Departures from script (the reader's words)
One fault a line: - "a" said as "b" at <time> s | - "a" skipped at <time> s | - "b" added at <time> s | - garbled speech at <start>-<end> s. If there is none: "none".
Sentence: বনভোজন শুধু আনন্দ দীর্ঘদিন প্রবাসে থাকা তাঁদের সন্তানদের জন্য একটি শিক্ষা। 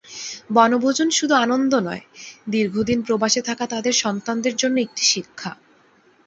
- "নয়" added at 1.8 s